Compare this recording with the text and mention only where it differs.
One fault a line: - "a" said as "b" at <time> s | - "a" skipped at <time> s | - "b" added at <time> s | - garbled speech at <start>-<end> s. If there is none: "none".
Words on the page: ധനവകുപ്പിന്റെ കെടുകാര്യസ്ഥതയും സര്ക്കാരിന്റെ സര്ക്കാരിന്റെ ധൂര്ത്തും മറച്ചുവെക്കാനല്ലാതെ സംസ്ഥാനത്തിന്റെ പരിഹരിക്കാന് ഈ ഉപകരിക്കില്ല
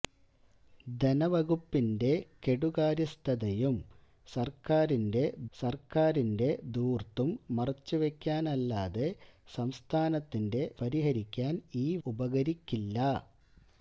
none